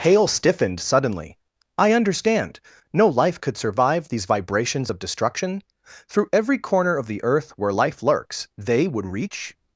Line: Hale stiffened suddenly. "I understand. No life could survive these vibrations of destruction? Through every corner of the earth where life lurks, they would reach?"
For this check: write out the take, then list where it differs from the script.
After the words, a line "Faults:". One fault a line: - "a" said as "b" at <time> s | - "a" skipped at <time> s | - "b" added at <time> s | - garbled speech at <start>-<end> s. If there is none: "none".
Hale stiffened suddenly. "I understand. No life could survive these vibrations of destruction? Through every corner of the earth where life lurks, they would reach?"
Faults:
none